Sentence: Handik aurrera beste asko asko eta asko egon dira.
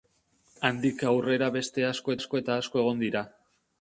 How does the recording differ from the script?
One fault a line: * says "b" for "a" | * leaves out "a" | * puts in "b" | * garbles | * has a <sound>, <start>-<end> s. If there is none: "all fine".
all fine